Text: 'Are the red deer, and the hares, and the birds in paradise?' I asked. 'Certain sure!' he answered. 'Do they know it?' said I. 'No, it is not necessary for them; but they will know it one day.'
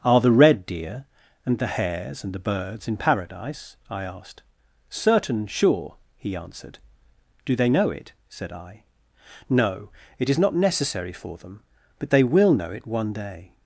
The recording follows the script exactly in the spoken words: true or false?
true